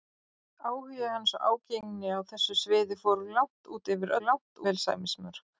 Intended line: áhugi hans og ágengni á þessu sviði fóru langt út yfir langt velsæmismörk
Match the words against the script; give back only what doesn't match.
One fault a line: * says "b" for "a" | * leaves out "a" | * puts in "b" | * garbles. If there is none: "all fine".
all fine